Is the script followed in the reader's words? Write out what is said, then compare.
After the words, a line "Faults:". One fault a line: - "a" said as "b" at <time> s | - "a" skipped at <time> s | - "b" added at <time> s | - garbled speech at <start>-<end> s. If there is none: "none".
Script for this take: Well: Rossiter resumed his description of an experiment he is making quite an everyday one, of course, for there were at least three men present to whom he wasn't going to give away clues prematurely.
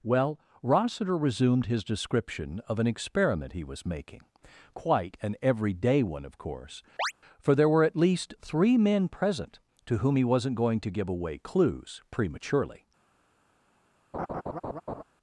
Well: Rossiter resumed his description of an experiment he was making quite an everyday one, of course, for there were at least three men present to whom he wasn't going to give away clues prematurely.
Faults:
- "is" said as "was" at 3.7 s